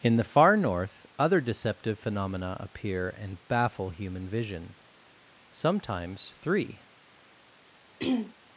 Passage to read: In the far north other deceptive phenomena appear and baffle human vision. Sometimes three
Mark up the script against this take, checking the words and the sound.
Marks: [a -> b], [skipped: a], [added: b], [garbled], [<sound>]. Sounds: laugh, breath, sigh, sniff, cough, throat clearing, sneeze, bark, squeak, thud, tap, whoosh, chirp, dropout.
In the far north other deceptive phenomena appear and baffle human vision. Sometimes three [throat clearing]